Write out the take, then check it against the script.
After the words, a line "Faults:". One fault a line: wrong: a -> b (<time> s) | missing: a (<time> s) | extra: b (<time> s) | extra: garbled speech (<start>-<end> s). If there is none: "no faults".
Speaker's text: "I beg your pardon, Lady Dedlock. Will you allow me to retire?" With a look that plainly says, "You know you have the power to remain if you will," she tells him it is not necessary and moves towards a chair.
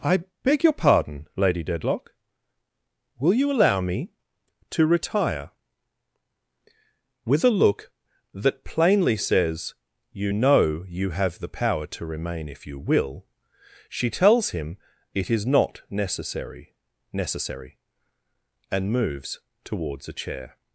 "I beg your pardon, Lady Dedlock. Will you allow me to retire?" With a look that plainly says, "You know you have the power to remain if you will," she tells him it is not necessary necessary and moves towards a chair.
Faults:
extra: necessary (17.1 s)